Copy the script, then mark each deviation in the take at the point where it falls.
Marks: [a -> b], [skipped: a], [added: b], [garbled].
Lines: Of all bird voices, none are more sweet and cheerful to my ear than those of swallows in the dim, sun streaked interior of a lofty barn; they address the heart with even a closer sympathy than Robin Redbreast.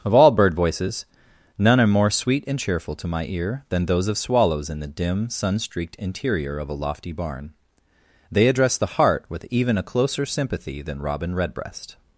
Of all bird voices, none are more sweet and cheerful to my ear than those of swallows in the dim, sun streaked interior of a lofty barn; they address the heart with even a closer sympathy than Robin Redbreast.